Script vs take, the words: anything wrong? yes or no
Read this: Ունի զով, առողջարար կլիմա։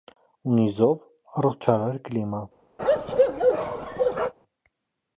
no